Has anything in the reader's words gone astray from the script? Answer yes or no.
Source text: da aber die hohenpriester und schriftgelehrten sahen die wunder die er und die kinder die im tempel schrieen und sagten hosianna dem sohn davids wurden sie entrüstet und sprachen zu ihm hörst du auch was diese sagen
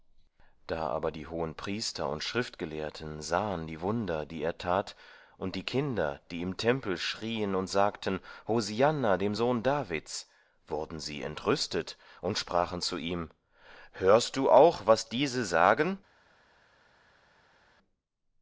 yes